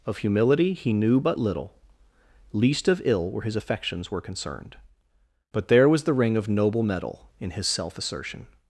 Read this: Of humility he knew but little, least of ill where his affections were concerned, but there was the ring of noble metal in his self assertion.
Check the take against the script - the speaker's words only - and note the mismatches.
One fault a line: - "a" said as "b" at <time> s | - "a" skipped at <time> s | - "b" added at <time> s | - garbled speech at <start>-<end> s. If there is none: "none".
none